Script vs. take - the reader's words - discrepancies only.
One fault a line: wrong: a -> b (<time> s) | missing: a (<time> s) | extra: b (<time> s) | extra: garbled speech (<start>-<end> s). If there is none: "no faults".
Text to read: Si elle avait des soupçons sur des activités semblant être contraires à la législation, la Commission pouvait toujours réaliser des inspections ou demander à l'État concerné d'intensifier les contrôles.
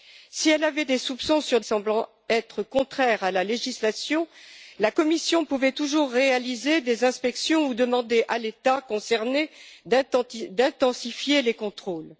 missing: des activités (1.6 s)